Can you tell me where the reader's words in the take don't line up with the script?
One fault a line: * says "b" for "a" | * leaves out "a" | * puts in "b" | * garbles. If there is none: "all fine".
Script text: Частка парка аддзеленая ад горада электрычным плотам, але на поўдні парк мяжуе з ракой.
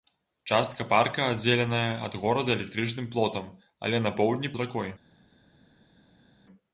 * leaves out "парк мяжуе"